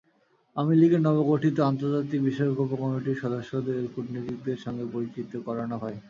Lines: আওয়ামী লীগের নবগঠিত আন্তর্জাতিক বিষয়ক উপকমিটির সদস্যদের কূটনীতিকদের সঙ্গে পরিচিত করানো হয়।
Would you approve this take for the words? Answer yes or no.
yes